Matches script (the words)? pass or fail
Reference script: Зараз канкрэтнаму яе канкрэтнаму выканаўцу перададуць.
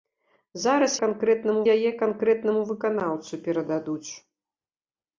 pass